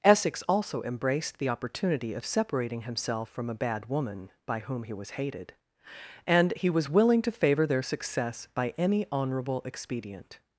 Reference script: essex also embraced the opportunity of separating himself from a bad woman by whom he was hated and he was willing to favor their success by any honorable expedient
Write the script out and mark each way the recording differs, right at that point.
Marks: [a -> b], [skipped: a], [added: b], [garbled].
essex also embraced the opportunity of separating himself from a bad woman by whom he was hated and he was willing to favor their success by any honorable expedient